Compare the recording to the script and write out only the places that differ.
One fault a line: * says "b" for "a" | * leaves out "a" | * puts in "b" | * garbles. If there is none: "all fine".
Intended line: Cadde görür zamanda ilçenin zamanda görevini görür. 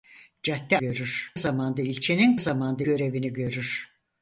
all fine